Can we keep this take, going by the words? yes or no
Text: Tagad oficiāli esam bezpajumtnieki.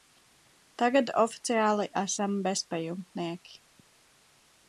yes